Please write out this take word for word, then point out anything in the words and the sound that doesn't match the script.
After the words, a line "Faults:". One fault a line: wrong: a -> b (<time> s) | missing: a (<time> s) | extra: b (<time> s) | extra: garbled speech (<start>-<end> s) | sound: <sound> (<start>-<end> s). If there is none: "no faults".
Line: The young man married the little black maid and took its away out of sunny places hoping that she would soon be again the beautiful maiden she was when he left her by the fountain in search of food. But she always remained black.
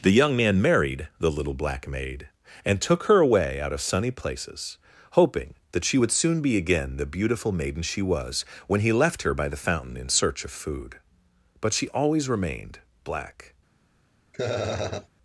The young man married the little black maid and took her away out of sunny places hoping that she would soon be again the beautiful maiden she was when he left her by the fountain in search of food. But she always remained black.
Faults:
wrong: its -> her (3.0 s)
sound: laugh (14.3-15.1 s)